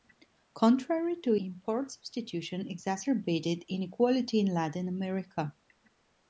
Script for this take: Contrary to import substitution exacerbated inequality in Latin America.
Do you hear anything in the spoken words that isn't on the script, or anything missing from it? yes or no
no